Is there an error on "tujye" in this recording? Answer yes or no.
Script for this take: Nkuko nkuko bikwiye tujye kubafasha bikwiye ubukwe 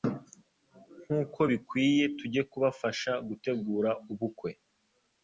no